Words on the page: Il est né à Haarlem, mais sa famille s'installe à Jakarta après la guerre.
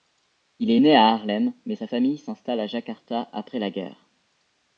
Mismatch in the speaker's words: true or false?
false